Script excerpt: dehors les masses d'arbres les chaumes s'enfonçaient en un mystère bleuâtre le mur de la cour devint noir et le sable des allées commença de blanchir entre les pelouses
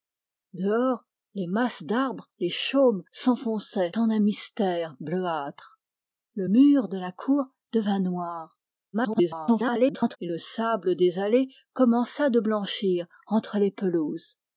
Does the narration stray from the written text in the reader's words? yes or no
yes